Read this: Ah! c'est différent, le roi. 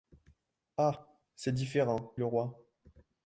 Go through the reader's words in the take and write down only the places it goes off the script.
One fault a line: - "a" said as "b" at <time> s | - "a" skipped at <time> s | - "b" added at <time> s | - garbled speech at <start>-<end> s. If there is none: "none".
none